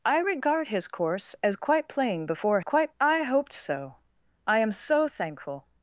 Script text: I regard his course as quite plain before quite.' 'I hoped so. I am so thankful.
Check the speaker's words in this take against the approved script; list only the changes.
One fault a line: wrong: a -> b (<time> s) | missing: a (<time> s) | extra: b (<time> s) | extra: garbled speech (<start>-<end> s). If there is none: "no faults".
no faults